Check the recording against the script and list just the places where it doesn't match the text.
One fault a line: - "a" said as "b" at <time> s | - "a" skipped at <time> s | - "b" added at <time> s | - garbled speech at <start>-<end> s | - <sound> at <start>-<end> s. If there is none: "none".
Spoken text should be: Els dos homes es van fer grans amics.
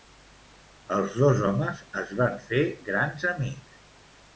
none